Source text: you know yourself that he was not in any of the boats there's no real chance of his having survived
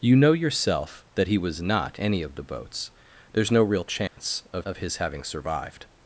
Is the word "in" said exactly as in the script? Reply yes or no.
no